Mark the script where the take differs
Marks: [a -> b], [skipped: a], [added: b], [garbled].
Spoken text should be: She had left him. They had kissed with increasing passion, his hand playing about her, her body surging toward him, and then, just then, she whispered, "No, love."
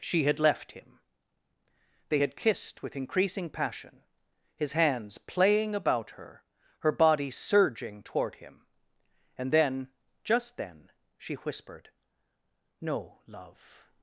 She had left him. They had kissed with increasing passion, his [hand -> hands] playing about her, her body surging toward him, and then, just then, she whispered, "No, love."